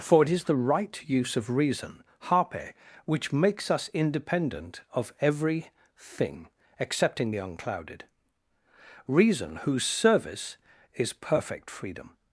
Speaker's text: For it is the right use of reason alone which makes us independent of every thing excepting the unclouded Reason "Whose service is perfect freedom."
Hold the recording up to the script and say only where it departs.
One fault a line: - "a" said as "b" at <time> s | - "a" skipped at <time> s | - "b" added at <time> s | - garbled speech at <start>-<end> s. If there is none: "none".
- "alone" said as "harpe" at 2.2 s